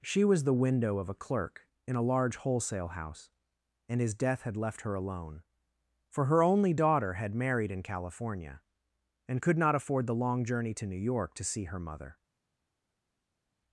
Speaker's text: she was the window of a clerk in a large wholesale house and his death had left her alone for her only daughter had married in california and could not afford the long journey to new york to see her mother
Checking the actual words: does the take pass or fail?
pass